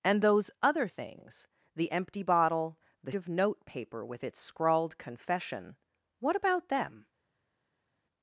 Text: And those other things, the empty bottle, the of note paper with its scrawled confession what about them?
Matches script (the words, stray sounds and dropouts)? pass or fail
pass